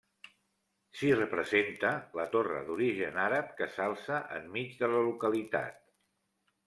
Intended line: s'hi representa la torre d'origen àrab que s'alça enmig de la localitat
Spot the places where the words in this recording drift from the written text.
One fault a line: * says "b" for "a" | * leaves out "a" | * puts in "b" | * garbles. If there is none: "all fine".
all fine